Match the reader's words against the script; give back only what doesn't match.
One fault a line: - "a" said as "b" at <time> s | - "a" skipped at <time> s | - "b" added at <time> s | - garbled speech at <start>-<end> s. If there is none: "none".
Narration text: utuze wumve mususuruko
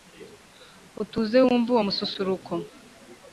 - "uwo" added at 1.7 s